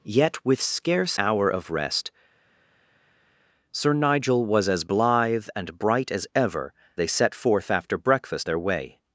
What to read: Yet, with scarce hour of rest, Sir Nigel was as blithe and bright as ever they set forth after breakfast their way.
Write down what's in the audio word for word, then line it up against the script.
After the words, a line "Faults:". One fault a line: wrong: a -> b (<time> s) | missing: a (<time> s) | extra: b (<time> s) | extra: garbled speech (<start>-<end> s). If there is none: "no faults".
Yet, with scarce hour of rest, Sir Nigel was as blithe and bright as ever they set forth after breakfast their way.
Faults:
no faults